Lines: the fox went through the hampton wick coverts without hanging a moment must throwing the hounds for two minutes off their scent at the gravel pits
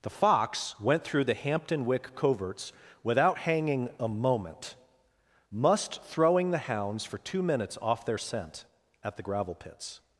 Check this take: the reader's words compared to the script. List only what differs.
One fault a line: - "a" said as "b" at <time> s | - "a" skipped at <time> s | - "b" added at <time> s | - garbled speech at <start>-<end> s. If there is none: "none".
none